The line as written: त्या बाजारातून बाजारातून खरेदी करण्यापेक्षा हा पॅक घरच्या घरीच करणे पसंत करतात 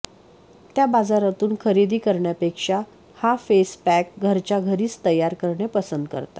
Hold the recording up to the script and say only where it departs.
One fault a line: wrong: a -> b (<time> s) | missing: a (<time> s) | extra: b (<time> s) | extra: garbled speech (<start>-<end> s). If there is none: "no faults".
missing: बाजारातून (1.5 s)
extra: फेस (3.4 s)
extra: तयार (5.0 s)